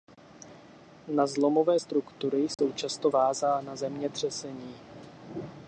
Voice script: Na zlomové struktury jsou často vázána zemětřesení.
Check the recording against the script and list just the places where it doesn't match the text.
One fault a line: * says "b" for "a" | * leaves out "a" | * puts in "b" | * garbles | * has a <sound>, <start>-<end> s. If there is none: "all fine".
* has a dropout, 2.5-2.6 s